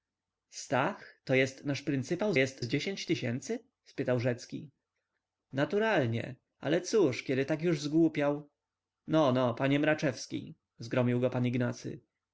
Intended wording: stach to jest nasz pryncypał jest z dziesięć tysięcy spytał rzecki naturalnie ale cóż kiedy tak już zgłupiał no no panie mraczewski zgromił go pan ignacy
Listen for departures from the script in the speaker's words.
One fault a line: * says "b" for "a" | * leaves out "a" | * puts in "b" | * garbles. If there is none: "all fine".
all fine